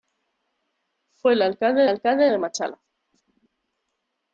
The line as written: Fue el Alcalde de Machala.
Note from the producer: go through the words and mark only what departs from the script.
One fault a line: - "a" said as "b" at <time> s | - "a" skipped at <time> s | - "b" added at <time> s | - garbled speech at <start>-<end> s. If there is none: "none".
- "Alcalde" added at 1.9 s